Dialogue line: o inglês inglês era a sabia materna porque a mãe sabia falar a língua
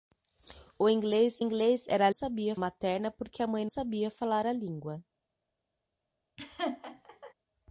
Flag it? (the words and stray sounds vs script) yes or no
yes